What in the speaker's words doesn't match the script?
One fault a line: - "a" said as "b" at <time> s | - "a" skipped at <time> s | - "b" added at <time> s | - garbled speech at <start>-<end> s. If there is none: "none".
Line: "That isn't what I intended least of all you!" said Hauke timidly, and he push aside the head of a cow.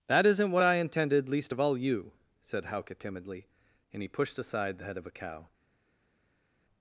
- "push" said as "pushed" at 4.1 s